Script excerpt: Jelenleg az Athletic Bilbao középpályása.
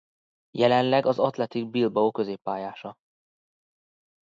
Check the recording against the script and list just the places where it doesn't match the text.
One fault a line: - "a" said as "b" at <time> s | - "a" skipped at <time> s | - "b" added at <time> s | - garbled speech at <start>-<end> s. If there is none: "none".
none